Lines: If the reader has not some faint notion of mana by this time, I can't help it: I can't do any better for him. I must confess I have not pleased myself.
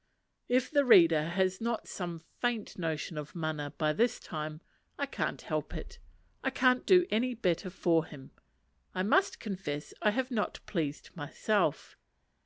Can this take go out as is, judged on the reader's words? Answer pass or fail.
pass